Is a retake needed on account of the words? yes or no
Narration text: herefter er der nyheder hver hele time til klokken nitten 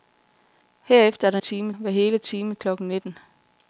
yes